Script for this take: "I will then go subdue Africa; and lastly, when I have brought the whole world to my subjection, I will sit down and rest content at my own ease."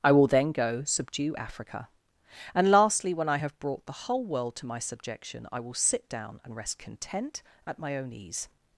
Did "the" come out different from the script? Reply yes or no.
no